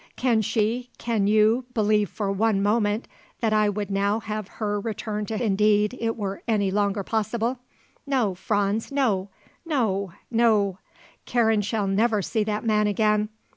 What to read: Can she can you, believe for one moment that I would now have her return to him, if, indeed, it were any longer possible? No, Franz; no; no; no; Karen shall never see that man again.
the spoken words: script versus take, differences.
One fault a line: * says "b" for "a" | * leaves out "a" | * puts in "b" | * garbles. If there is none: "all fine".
* leaves out "him if"